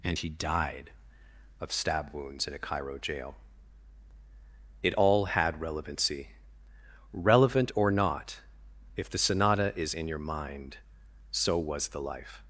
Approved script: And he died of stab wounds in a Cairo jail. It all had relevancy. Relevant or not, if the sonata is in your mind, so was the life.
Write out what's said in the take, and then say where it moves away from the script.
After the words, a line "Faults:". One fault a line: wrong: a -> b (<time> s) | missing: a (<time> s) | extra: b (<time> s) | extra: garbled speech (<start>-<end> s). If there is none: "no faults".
And he died of stab wounds in a Cairo jail. It all had relevancy. Relevant or not, if the sonata is in your mind, so was the life.
Faults:
no faults